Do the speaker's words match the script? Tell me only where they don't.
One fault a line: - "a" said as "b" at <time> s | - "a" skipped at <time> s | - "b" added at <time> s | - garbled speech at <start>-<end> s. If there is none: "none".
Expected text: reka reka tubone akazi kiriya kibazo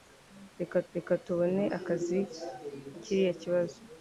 none